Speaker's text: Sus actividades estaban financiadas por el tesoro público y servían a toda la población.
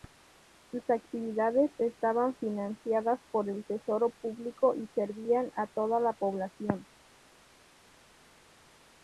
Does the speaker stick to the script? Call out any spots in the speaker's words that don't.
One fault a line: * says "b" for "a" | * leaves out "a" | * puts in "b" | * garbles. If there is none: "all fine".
all fine